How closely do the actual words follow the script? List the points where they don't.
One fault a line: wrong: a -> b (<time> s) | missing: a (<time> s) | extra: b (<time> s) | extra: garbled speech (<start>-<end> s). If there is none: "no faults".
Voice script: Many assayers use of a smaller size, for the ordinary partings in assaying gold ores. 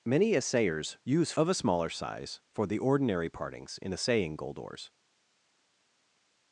no faults